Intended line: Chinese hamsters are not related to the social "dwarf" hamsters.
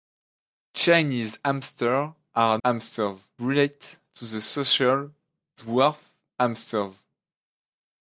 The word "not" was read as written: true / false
false